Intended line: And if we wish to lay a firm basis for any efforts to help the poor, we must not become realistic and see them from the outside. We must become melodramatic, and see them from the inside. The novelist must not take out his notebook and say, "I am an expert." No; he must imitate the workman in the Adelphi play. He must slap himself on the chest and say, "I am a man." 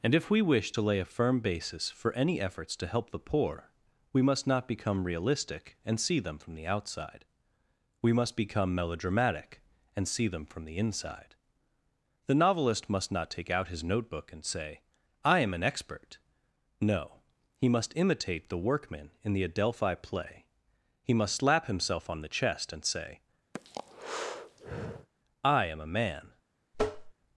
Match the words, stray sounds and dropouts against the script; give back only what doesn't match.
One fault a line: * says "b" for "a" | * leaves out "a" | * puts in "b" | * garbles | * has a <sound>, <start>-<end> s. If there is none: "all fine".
* has a breath, 23.5-25.1 s
* has a tap, 26.7-27.1 s